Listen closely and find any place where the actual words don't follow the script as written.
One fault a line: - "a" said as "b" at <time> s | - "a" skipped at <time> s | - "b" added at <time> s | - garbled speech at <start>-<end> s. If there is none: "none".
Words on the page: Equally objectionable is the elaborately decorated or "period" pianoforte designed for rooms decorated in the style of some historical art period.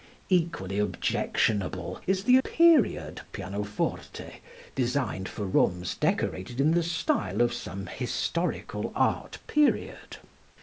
- "elaborately decorated or" skipped at 2.4 s